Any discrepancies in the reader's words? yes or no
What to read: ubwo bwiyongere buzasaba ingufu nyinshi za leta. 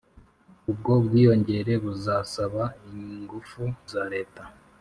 yes